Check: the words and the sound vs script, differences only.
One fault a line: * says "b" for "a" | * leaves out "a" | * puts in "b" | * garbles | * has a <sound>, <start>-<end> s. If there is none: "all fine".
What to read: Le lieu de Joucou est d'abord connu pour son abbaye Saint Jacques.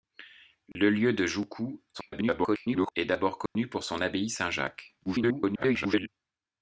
* has a dropout, 0.7-0.8 s
* garbles
* has a dropout, 3.5-3.6 s
* garbles